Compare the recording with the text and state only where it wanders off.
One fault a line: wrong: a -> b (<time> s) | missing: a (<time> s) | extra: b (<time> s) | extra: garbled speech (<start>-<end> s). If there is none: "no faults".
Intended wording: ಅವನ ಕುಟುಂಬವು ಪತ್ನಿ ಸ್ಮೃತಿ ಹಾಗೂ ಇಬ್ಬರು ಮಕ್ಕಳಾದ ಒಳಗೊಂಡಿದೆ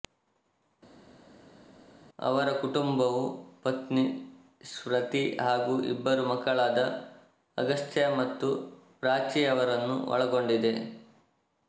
wrong: ಅವನ -> ಅವರ (2.2 s)
extra: ಅಗಸ್ತ್ಯ ಮತ್ತು ಪ್ರಾಚ್ಚಿಯವರನ್ನು (7.6 s)